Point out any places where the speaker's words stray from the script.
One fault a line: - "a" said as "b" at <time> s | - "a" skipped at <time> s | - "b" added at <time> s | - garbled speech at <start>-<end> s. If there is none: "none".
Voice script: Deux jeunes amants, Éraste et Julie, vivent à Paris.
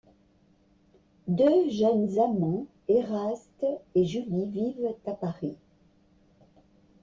none